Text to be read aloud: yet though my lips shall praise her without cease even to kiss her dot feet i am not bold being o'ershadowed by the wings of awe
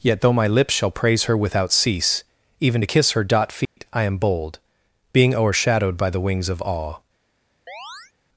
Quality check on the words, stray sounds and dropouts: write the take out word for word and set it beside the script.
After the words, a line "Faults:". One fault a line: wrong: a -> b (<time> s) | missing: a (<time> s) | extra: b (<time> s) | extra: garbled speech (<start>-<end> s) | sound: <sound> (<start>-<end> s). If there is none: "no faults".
yet though my lips shall praise her without cease even to kiss her dot feet i am bold being o'ershadowed by the wings of awe
Faults:
sound: dropout (3.7-3.8 s)
missing: not (4.2 s)
sound: chirp (7.7-8.1 s)